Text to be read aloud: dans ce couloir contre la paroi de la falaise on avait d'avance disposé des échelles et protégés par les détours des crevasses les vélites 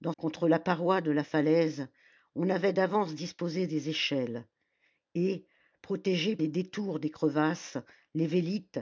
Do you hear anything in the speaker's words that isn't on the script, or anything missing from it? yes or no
yes